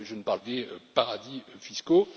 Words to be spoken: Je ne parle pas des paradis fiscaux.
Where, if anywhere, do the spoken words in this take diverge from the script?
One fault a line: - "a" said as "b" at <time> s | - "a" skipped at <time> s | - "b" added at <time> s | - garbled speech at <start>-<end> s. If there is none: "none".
- "pas" skipped at 0.4 s